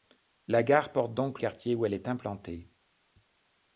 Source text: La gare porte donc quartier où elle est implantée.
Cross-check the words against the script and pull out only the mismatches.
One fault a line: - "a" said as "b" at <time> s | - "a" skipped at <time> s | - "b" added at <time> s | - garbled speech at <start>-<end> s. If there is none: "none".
none